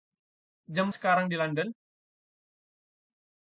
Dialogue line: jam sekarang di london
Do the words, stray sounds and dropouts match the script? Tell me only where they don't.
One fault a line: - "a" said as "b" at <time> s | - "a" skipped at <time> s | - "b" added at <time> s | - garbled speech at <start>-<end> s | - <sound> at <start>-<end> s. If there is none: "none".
none